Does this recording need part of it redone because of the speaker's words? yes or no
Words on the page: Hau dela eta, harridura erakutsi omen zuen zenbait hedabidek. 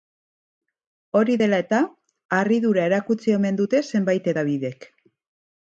yes